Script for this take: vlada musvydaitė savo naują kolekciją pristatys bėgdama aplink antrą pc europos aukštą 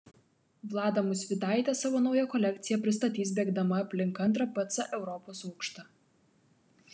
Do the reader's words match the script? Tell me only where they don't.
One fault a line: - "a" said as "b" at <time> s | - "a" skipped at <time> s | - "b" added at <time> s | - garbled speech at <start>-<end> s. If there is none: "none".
none